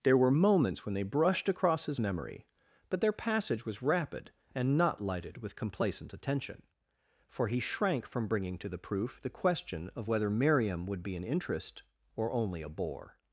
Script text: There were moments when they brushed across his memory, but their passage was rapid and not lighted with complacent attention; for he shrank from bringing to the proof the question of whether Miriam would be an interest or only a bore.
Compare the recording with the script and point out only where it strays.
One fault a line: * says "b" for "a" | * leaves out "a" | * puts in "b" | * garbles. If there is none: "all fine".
all fine